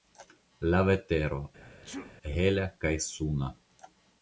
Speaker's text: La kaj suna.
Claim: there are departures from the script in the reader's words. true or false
true